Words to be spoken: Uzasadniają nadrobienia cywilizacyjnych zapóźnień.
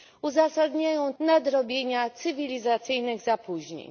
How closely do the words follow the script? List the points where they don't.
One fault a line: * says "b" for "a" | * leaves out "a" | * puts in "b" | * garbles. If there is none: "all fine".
all fine